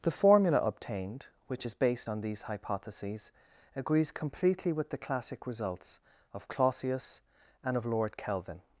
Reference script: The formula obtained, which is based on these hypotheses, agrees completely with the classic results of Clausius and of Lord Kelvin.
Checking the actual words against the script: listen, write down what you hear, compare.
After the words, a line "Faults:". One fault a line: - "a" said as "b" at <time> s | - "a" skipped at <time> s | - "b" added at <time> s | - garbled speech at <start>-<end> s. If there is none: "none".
The formula obtained, which is based on these hypotheses, agrees completely with the classic results of Clausius and of Lord Kelvin.
Faults:
none